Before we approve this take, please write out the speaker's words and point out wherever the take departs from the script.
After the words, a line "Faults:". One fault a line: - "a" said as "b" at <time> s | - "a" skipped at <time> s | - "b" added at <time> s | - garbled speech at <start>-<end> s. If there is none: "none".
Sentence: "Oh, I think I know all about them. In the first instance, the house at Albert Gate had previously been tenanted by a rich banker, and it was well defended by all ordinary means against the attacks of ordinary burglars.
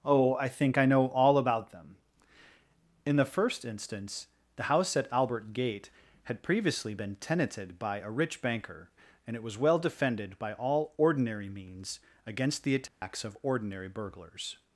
"Oh, I think I know all about them. In the first instance, the house at Albert Gate had previously been tenanted by a rich banker, and it was well defended by all ordinary means against the attacks of ordinary burglars.
Faults:
none